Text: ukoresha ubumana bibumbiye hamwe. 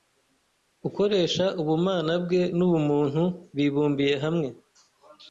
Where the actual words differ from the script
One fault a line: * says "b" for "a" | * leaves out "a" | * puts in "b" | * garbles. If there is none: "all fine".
* puts in "bwe n'ubumuntu"